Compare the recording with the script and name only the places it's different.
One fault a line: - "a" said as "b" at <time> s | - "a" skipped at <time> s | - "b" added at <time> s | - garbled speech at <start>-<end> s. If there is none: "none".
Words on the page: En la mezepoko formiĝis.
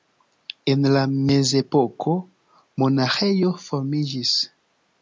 - "monaĥejo" added at 2.8 s